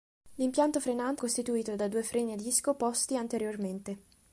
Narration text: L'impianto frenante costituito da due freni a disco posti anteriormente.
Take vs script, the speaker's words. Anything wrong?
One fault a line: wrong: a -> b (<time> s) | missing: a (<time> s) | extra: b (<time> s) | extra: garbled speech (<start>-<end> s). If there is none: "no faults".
no faults